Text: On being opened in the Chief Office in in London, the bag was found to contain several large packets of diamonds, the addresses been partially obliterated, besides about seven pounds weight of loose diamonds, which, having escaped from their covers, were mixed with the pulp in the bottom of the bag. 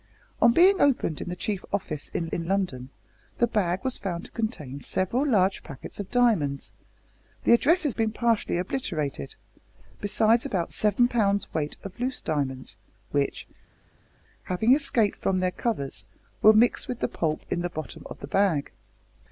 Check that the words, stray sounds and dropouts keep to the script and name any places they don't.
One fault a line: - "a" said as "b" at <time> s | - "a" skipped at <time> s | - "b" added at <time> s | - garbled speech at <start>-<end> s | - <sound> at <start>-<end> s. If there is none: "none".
none